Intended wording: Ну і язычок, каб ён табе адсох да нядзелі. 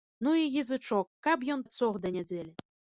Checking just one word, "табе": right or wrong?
wrong